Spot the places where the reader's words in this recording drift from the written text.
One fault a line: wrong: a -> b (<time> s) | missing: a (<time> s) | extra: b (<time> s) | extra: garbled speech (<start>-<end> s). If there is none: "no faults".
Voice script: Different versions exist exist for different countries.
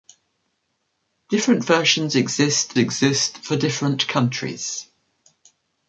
no faults